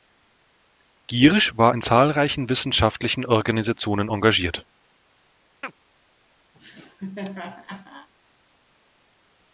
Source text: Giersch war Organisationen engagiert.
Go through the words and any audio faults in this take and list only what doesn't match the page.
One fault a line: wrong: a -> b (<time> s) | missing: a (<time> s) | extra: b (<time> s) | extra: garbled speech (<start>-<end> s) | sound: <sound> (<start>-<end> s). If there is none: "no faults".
extra: in zahlreichen wissenschaftlichen (1.7 s)
sound: chirp (5.6-5.7 s)
sound: laugh (6.5-8.1 s)